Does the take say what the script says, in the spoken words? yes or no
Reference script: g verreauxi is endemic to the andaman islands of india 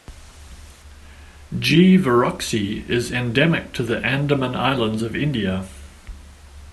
yes